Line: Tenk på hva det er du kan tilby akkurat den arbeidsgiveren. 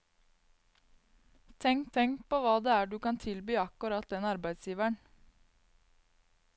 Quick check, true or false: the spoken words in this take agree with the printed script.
false